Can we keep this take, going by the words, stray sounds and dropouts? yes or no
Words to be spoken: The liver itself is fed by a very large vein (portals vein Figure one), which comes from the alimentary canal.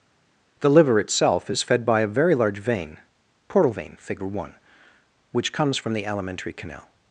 no